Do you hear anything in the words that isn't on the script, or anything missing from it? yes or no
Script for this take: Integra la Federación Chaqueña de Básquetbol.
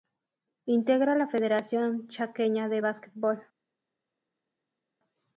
no